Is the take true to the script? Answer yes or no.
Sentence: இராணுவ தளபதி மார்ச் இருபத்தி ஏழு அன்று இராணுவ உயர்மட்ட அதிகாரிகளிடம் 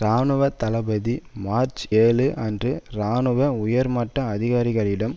no